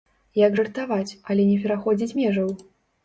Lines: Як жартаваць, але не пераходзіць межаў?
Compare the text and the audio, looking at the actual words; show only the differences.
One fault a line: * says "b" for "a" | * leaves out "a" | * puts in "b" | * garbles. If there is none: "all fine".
all fine